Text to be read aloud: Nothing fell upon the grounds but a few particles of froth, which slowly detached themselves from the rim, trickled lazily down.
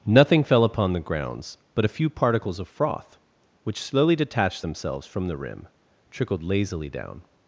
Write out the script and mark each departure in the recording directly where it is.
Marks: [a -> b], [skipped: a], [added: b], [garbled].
Nothing fell upon the grounds but a few particles of froth, which slowly detached themselves from the rim, trickled lazily down.